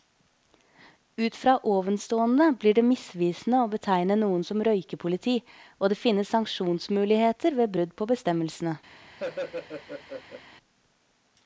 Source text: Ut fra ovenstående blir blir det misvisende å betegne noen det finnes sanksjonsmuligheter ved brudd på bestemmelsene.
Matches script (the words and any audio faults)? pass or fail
fail